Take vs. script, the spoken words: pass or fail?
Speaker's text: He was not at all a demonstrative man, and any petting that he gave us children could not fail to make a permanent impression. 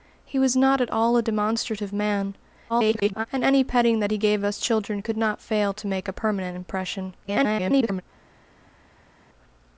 fail